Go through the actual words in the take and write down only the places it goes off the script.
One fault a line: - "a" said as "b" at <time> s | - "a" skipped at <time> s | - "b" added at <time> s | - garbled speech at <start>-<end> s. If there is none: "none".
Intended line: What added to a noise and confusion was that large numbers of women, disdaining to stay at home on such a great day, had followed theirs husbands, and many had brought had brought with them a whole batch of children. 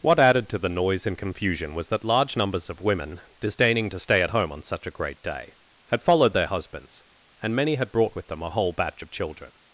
- "a" said as "the" at 0.6 s
- "theirs" said as "their" at 6.3 s
- "had brought" skipped at 8.1 s